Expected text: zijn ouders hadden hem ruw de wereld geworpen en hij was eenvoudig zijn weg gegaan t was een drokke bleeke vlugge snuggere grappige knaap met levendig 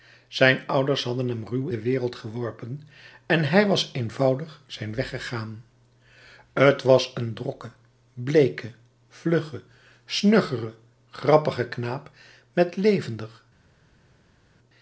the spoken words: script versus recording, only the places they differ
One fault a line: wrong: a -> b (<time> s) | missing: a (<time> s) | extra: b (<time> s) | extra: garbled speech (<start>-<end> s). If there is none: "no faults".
no faults